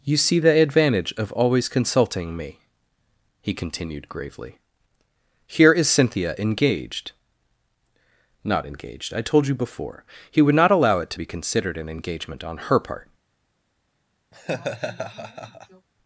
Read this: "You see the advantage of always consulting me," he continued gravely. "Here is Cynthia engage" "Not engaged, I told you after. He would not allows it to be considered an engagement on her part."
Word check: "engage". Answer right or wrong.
wrong